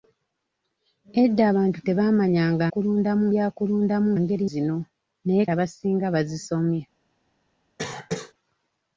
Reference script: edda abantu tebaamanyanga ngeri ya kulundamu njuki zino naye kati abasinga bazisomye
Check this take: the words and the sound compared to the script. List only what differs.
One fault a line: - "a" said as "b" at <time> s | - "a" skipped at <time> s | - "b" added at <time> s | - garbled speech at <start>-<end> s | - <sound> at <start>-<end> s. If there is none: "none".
- "ngeri" said as "kulundamu" at 2.7 s
- "njuki" said as "ngeri" at 4.2 s
- "kati" skipped at 5.4 s
- cough at 7.8-8.3 s